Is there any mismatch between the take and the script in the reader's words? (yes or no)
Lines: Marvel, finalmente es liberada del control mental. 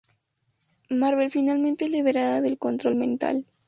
no